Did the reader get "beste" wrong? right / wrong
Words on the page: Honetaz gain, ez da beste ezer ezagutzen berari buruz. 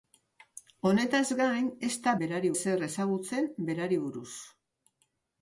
wrong